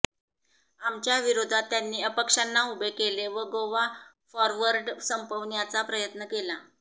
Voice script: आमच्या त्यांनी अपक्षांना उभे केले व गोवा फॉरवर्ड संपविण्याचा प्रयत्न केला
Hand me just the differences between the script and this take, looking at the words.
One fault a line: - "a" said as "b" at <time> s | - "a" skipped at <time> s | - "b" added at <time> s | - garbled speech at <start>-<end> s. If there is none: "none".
- "विरोधात" added at 1.2 s